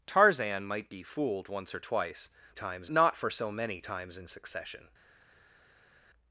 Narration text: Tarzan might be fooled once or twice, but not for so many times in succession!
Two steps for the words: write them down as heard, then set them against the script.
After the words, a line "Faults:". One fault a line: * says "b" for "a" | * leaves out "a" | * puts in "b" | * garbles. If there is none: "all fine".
Tarzan might be fooled once or twice, times not for so many times in succession!
Faults:
* says "times" for "but"